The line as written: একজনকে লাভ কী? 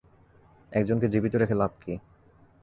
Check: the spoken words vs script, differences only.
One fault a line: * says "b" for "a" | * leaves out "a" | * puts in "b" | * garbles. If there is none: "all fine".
* puts in "জীবিত রেখে"